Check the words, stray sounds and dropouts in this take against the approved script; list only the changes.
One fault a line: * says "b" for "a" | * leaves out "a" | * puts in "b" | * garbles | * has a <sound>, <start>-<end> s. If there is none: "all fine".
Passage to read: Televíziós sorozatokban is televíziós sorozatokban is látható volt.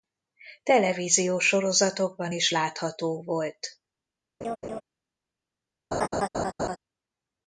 * leaves out "televíziós sorozatokban is"
* has a laugh, 4.4-4.8 s
* has a laugh, 5.9-6.8 s